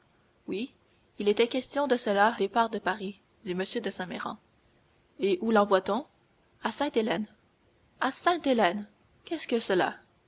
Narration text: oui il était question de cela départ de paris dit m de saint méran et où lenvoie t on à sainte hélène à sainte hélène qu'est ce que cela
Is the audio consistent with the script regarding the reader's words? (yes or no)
yes